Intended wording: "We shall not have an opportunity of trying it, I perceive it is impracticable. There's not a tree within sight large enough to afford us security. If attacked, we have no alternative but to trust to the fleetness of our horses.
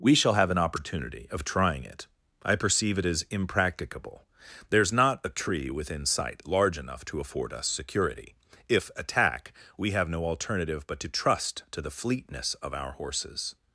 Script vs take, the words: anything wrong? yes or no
yes